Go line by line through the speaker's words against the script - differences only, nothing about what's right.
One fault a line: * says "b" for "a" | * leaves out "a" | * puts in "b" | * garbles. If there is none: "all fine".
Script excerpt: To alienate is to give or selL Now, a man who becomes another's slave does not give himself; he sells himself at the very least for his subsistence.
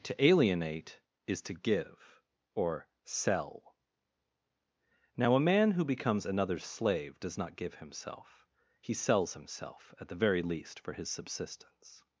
all fine